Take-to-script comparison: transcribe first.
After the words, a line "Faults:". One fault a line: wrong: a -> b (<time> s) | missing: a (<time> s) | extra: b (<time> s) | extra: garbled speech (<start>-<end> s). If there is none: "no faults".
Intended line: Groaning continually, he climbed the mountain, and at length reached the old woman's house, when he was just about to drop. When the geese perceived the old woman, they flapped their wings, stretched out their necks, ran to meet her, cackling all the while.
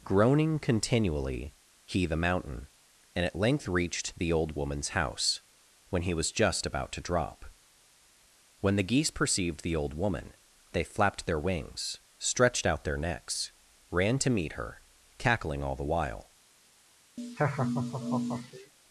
Groaning continually, he the mountain, and at length reached the old woman's house, when he was just about to drop. When the geese perceived the old woman, they flapped their wings, stretched out their necks, ran to meet her, cackling all the while.
Faults:
missing: climbed (2.1 s)